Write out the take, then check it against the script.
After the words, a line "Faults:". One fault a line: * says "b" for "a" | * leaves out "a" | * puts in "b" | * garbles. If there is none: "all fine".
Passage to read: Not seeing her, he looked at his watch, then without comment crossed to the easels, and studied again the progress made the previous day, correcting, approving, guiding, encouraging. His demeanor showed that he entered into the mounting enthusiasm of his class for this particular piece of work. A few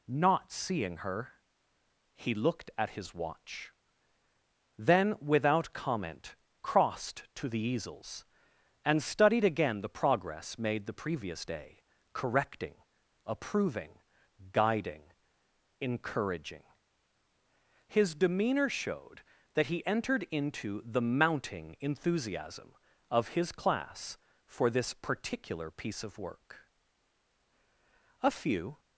Not seeing her, he looked at his watch, then without comment crossed to the easels, and studied again the progress made the previous day, correcting, approving, guiding, encouraging. His demeanor showed that he entered into the mounting enthusiasm of his class for this particular piece of work. A few
Faults:
all fine